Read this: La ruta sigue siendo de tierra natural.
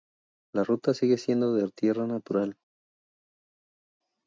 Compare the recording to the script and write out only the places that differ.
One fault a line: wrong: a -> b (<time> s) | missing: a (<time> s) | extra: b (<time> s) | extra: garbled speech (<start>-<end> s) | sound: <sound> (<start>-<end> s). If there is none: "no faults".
no faults